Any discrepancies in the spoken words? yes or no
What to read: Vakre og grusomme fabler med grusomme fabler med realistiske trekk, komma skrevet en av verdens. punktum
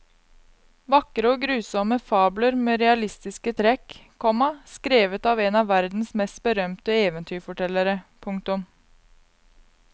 yes